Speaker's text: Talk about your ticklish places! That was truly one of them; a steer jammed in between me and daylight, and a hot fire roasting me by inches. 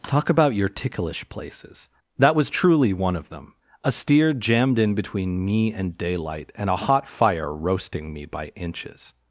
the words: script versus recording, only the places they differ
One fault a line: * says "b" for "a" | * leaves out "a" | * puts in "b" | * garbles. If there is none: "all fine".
all fine